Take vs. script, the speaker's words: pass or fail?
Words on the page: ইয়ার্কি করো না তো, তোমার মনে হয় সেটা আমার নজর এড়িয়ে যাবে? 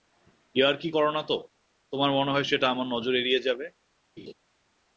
pass